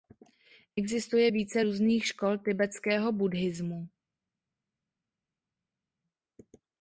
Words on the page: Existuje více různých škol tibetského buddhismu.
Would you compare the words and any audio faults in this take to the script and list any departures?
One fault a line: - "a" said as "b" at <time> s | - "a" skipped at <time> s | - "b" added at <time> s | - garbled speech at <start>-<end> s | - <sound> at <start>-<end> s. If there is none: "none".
none